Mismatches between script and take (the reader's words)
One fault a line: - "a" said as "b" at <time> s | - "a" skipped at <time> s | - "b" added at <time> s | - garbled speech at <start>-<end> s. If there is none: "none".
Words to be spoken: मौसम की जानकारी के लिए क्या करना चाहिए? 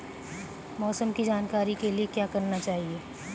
none